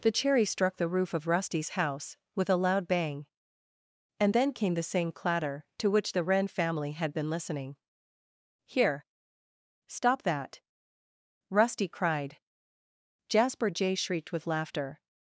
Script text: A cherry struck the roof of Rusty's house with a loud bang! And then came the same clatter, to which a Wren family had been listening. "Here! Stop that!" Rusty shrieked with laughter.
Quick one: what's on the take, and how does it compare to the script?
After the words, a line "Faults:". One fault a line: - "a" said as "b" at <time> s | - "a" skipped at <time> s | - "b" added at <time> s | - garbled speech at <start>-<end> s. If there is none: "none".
The cherry struck the roof of Rusty's house with a loud bang! And then came the same clatter, to which the Wren family had been listening. "Here! Stop that!" Rusty cried. Jasper Jay shrieked with laughter.
Faults:
- "A" said as "The" at 0.0 s
- "a" said as "the" at 6.1 s
- "cried Jasper Jay" added at 11.9 s